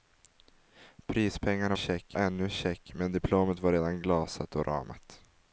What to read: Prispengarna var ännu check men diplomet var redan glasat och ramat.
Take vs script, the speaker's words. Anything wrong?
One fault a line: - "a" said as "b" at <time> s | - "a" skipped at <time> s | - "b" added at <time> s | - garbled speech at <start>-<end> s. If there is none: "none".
- "var" said as "check" at 1.7 s